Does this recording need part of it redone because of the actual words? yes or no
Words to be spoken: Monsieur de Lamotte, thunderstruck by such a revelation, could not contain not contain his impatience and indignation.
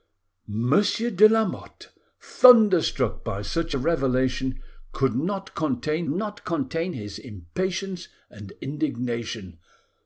no